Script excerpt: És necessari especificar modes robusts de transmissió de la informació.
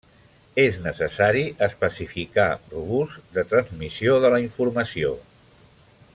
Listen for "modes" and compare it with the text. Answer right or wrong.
wrong